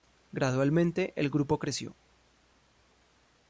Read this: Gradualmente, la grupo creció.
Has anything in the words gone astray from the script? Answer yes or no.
yes